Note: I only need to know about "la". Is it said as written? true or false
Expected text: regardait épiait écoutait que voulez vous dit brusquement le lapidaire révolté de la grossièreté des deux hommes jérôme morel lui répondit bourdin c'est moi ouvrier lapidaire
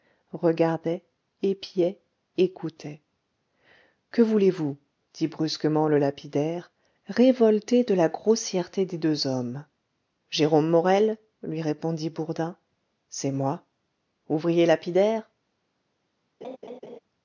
true